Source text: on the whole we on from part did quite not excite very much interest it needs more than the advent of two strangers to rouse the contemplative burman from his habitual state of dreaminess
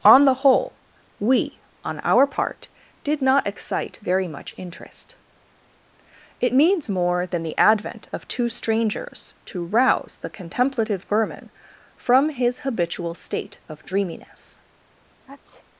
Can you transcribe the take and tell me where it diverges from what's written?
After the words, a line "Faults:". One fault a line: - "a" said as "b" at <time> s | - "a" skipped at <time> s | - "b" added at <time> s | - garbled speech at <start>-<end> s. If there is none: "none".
on the whole we on our part did not excite very much interest it needs more than the advent of two strangers to rouse the contemplative burman from his habitual state of dreaminess
Faults:
- "from" said as "our" at 2.0 s
- "quite" skipped at 3.2 s